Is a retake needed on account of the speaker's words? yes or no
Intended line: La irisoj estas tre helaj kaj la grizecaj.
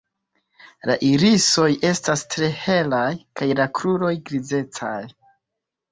yes